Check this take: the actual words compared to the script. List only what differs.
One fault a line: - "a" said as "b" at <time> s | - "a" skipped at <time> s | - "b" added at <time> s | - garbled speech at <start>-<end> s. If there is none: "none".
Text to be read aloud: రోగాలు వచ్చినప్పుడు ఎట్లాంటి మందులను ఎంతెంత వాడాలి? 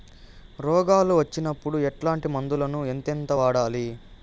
none